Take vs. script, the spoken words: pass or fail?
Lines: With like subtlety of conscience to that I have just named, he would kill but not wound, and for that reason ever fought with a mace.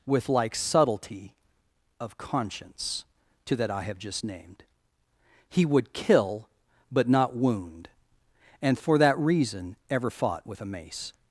pass